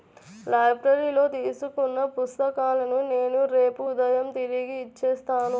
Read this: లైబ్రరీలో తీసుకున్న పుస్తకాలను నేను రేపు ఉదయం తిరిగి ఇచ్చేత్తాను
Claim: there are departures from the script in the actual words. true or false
false